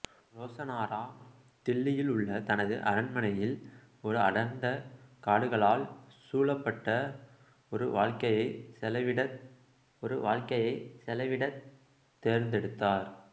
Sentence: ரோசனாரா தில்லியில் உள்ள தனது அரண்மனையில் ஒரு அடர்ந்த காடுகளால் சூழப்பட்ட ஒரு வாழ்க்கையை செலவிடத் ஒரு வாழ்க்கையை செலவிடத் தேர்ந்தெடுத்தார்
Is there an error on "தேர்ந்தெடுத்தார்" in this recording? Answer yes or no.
no